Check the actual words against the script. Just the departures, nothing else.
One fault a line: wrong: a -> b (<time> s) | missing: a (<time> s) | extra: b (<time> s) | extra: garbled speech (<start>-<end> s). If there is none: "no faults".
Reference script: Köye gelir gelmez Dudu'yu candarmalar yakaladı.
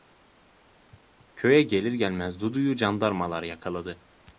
no faults